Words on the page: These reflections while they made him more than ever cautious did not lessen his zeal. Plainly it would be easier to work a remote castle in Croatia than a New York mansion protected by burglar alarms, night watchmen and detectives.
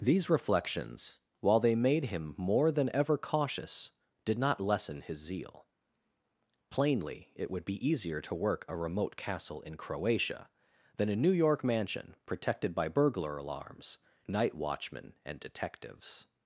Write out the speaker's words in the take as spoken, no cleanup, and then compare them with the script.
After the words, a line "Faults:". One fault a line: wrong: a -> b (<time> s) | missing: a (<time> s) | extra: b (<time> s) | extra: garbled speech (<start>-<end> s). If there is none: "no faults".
These reflections while they made him more than ever cautious did not lessen his zeal. Plainly it would be easier to work a remote castle in Croatia than a New York mansion protected by burglar alarms, night watchmen and detectives.
Faults:
no faults